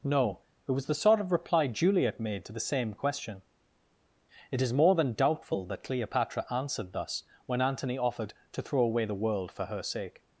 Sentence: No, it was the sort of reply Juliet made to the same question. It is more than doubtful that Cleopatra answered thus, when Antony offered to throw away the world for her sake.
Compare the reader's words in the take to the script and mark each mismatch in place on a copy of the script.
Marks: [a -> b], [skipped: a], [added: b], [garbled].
No, it was the sort of reply Juliet made to the same question. It is more than doubtful that Cleopatra answered thus, when Antony offered to throw away the world for her sake.